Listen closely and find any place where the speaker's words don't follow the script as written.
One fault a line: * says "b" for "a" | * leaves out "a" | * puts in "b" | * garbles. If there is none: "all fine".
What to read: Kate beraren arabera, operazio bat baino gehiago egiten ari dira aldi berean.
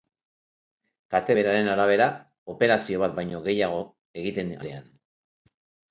* leaves out "ari dira aldi"